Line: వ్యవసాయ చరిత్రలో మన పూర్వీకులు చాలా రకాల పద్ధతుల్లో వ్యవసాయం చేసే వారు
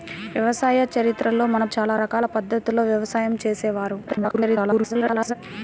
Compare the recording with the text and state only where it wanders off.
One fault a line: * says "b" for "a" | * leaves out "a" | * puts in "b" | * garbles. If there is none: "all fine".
* leaves out "పూర్వీకులు"
* garbles